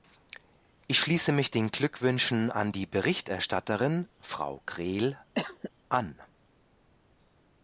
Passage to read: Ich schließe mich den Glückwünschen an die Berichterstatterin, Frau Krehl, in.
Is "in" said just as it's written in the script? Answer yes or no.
no